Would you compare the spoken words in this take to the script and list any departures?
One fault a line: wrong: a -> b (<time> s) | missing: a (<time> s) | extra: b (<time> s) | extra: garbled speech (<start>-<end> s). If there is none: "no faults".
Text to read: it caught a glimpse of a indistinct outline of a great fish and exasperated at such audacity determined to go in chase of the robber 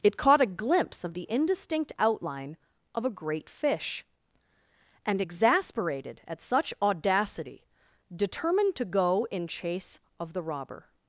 wrong: a -> the (1.1 s)